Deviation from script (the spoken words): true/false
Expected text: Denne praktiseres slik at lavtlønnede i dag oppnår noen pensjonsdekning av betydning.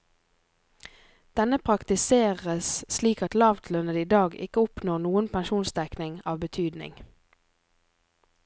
true